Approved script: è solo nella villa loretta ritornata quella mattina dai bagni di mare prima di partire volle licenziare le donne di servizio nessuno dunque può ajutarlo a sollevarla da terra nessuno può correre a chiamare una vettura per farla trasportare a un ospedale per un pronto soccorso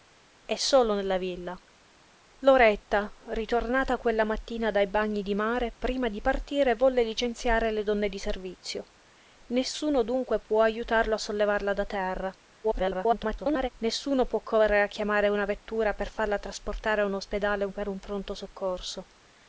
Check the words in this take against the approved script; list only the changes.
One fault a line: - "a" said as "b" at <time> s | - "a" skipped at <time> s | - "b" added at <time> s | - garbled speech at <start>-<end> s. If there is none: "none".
- garbled speech at 12.6-13.7 s